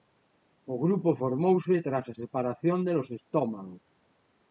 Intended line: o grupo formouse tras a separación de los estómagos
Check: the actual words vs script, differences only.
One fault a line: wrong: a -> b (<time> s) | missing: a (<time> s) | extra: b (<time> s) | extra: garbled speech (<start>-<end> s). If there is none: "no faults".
no faults